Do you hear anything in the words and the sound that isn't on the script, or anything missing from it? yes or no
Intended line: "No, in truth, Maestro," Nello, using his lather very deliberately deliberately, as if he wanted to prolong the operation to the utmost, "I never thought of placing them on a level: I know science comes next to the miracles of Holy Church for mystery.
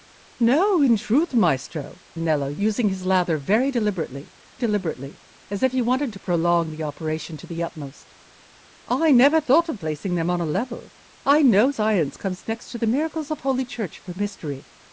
no